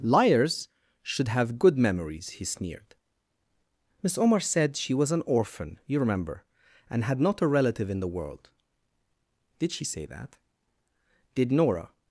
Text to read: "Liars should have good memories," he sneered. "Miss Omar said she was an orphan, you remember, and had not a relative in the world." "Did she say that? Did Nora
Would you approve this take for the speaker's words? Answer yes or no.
yes